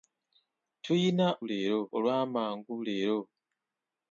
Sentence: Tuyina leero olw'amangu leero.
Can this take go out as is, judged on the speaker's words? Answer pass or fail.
pass